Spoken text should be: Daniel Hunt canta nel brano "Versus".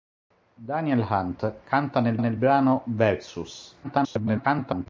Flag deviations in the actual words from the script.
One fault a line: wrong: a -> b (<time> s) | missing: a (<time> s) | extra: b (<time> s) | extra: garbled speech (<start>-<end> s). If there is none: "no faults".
extra: nel (2.2 s)
extra: garbled speech (3.8-4.9 s)